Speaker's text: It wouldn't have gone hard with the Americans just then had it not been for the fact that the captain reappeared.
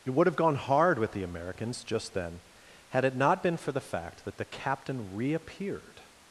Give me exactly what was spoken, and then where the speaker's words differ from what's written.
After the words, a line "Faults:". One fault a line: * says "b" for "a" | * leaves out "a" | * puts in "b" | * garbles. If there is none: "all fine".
It would have gone hard with the Americans just then had it not been for the fact that the captain reappeared.
Faults:
* says "would" for "wouldn't"